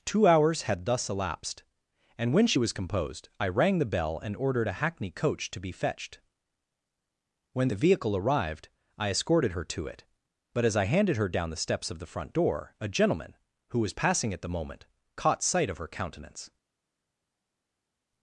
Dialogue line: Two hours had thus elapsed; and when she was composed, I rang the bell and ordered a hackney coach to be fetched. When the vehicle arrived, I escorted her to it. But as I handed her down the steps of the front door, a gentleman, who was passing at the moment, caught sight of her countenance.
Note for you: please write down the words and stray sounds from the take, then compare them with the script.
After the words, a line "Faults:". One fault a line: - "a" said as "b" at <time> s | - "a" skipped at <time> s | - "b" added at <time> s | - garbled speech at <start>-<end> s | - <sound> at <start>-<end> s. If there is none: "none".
Two hours had thus elapsed; and when she was composed, I rang the bell and ordered a hackney coach to be fetched. When the vehicle arrived, I escorted her to it. But as I handed her down the steps of the front door, a gentleman, who was passing at the moment, caught sight of her countenance.
Faults:
none